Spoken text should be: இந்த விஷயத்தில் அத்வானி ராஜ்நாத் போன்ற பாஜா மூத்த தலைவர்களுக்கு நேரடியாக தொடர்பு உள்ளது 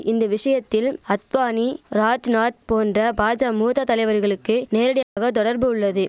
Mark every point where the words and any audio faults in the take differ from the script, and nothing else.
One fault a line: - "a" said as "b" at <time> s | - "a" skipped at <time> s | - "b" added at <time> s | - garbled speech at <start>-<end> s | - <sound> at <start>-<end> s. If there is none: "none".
- dropout at 5.0-5.2 s